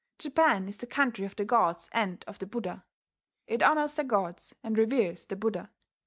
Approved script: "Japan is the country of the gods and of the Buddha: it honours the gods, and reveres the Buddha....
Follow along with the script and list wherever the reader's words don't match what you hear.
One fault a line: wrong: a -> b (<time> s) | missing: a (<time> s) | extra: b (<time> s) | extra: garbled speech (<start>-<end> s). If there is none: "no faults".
no faults